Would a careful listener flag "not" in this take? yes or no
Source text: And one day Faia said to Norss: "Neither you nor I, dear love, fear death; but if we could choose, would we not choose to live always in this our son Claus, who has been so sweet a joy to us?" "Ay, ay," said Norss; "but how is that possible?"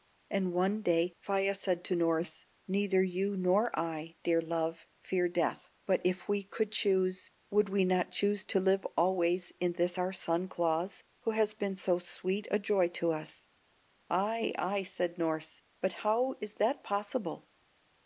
no